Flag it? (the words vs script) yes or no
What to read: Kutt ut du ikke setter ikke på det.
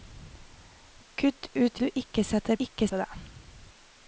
no